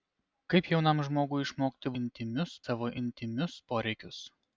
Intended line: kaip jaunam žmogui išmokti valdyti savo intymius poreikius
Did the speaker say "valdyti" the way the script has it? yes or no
no